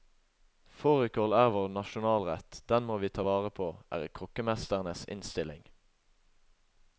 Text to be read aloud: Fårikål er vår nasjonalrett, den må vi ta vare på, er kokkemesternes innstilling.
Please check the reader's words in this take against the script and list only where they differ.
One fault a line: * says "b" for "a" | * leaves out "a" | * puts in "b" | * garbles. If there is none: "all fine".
all fine